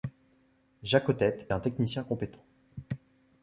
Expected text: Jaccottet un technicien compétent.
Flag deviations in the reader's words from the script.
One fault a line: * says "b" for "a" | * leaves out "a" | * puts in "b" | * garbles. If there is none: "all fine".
all fine